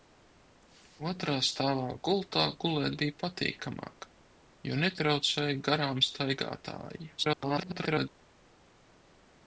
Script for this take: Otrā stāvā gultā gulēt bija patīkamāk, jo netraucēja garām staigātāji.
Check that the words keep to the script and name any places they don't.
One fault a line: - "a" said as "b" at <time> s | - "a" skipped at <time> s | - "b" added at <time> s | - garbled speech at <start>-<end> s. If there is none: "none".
- garbled speech at 7.2-8.1 s